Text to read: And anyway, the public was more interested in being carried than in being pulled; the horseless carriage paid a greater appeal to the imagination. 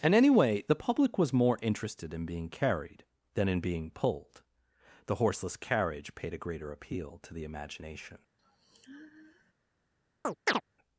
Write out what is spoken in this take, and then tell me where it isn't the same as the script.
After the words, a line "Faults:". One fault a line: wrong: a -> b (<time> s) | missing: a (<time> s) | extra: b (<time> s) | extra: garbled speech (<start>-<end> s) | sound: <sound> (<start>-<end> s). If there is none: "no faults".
And anyway, the public was more interested in being carried than in being pulled; the horseless carriage paid a greater appeal to the imagination.
Faults:
sound: sigh (8.4-9.5 s)
sound: chirp (10.2-10.6 s)